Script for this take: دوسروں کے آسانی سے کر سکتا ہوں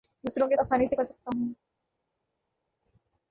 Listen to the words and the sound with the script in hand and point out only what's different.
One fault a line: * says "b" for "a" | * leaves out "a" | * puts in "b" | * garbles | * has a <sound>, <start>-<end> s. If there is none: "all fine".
all fine